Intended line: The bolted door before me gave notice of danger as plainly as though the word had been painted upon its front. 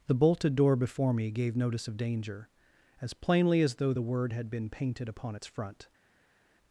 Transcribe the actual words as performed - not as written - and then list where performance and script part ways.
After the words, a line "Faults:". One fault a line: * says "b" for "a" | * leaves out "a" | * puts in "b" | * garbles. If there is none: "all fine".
The bolted door before me gave notice of danger as plainly as though the word had been painted upon its front.
Faults:
all fine